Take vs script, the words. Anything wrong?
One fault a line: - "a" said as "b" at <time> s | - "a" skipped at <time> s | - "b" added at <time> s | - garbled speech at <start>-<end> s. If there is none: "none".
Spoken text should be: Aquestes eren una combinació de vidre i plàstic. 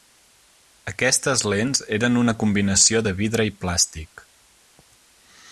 - "lents" added at 1.5 s